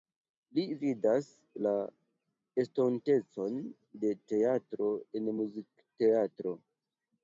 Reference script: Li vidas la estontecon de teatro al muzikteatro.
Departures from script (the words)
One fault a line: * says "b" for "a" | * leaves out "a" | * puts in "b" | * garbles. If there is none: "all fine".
* says "en" for "al"